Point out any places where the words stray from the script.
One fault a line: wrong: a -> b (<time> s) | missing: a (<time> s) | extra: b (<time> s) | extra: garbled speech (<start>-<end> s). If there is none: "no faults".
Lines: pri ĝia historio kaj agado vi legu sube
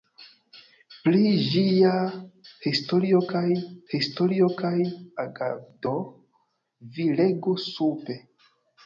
extra: historio kaj (3.9 s)